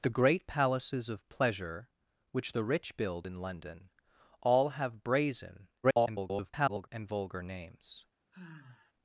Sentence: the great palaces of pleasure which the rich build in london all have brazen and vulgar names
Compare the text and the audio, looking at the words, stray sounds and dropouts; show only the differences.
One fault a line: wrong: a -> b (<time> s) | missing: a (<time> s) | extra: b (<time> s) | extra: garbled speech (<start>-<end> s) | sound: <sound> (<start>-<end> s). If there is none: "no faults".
extra: garbled speech (5.8-6.9 s)
sound: sigh (8.3-8.9 s)